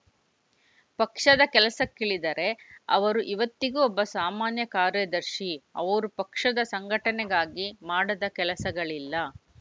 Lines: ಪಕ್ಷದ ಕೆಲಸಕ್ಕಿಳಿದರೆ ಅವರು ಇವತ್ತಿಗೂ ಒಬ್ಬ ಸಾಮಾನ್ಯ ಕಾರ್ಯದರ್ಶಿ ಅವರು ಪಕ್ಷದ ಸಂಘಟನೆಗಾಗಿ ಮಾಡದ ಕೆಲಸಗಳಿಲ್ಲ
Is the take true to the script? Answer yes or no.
yes